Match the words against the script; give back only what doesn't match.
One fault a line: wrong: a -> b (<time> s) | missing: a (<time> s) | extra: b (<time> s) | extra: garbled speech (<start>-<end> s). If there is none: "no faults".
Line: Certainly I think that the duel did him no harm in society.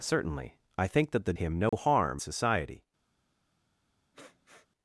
missing: duel did (1.3 s)
missing: in (2.2 s)